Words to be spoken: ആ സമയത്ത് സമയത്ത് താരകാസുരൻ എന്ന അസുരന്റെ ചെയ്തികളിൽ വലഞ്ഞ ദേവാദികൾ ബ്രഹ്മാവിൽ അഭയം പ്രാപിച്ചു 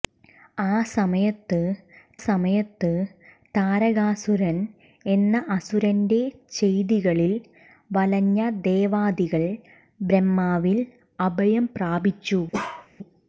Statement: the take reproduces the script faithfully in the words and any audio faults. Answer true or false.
false